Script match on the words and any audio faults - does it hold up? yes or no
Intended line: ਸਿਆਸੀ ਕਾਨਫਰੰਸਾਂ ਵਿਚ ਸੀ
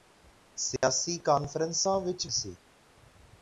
no